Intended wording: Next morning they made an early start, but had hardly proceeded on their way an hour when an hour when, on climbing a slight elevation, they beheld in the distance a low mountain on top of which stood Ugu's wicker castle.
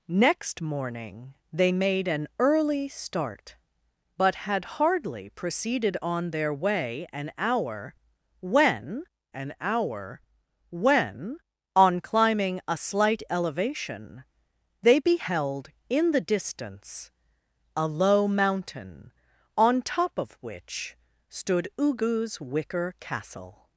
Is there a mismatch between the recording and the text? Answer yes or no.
no